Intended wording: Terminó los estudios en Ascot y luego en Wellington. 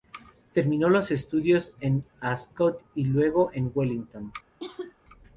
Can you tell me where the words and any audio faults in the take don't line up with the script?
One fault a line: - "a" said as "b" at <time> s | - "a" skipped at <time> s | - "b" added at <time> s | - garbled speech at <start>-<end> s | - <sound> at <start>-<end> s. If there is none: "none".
- cough at 4.6-4.9 s